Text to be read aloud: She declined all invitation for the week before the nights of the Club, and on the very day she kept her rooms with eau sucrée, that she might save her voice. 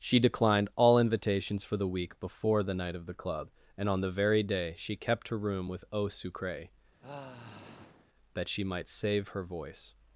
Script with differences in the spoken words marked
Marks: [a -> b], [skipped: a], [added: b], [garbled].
She declined all [invitation -> invitations] for the week before the [nights -> night] of the Club, and on the very day she kept her [rooms -> room] with eau sucrée, that she might save her voice.